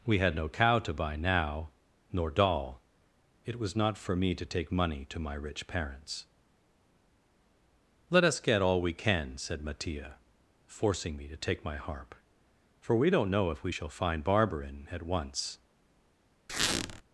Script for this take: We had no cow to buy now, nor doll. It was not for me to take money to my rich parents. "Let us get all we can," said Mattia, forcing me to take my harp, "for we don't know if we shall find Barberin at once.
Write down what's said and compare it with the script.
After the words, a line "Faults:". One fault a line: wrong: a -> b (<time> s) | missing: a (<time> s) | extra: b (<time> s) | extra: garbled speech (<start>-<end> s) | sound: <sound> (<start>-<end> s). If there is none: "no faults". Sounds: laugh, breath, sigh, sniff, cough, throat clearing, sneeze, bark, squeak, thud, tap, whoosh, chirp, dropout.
We had no cow to buy now, nor doll. It was not for me to take money to my rich parents. "Let us get all we can," said Mattia, forcing me to take my harp, "for we don't know if we shall find Barberin at once.
Faults:
sound: squeak (16.5-17.0 s)